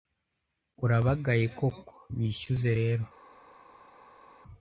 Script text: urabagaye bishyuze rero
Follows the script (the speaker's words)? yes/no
no